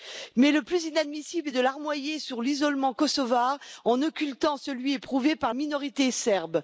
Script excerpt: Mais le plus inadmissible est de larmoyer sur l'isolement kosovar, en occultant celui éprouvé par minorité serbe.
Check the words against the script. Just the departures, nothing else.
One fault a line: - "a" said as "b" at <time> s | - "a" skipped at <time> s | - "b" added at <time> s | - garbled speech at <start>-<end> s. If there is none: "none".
none